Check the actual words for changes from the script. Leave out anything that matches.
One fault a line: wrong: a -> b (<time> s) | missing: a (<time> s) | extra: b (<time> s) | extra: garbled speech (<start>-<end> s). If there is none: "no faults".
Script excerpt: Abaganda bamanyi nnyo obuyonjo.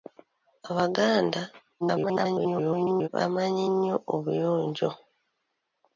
extra: garbled speech (1.8-3.1 s)